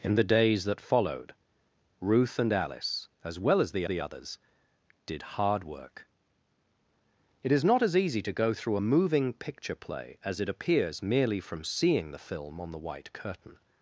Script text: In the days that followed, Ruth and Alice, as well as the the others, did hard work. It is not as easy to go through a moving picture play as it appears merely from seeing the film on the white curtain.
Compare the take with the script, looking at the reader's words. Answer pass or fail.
pass